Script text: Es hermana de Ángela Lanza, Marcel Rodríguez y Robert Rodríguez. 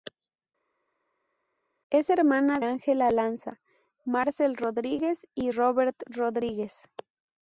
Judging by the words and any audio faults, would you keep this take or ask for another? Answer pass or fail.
fail